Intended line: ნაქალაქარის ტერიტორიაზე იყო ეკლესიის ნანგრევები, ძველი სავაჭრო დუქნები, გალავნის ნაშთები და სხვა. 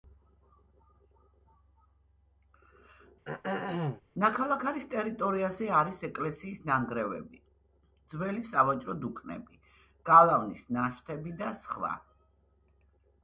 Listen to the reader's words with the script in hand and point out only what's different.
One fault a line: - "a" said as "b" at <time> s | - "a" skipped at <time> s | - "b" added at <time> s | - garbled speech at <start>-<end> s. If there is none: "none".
- "იყო" said as "არის" at 5.8 s